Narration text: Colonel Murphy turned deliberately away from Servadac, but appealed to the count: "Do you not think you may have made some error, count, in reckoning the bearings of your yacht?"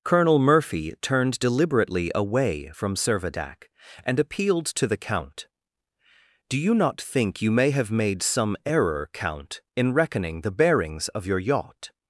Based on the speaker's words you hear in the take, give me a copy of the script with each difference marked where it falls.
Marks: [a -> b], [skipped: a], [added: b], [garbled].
Colonel Murphy turned deliberately away from Servadac, [but -> and] appealed to the count: "Do you not think you may have made some error, count, in reckoning the bearings of your yacht?"